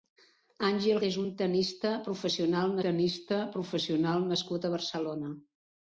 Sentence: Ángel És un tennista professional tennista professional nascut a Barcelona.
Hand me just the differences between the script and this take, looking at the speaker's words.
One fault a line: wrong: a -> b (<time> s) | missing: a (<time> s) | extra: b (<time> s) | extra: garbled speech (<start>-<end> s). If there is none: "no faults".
no faults